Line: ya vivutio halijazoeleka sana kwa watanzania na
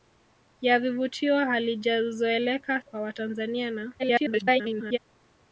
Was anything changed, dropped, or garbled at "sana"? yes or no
yes